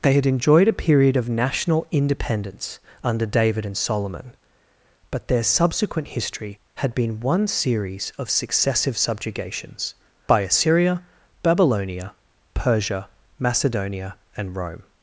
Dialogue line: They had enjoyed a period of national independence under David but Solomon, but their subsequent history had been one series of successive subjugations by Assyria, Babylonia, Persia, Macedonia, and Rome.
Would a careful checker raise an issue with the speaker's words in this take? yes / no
yes